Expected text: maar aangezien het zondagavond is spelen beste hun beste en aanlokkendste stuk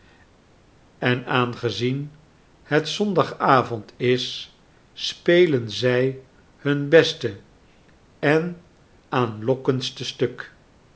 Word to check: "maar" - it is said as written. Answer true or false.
false